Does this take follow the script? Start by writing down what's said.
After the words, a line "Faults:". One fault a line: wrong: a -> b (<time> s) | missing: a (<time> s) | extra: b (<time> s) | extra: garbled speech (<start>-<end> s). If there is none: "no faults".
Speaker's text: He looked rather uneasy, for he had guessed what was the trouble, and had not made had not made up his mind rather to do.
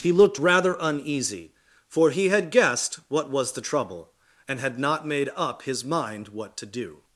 He looked rather uneasy, for he had guessed what was the trouble, and had not made up his mind what to do.
Faults:
missing: had not made (5.3 s)
wrong: rather -> what (6.3 s)